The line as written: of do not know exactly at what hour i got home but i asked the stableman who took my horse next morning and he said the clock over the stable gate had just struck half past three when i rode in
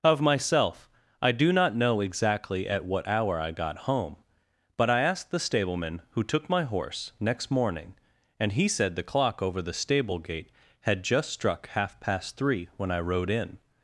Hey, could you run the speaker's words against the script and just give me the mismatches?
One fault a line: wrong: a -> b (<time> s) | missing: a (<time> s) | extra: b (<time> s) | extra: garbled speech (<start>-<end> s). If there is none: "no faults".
extra: myself i (0.2 s)